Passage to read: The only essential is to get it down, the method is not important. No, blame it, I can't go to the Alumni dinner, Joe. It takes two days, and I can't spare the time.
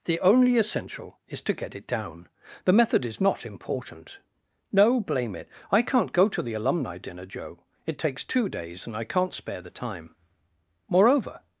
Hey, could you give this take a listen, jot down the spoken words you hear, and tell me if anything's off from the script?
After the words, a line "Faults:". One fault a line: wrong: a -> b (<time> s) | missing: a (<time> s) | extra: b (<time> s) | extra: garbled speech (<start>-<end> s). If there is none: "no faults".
The only essential is to get it down, the method is not important. No, blame it, I can't go to the Alumni dinner, Joe. It takes two days, and I can't spare the time. Moreover
Faults:
extra: Moreover (10.9 s)